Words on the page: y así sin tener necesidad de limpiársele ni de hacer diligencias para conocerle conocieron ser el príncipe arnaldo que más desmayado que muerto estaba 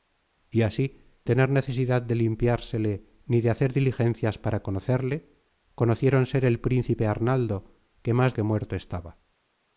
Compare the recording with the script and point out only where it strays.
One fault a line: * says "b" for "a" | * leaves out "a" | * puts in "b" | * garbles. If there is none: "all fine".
* leaves out "sin"
* leaves out "desmayado"